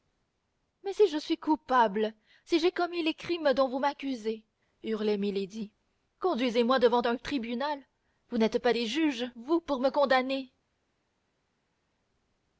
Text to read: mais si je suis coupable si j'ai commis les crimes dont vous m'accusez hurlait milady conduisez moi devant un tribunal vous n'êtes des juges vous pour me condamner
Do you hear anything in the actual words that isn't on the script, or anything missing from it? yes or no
yes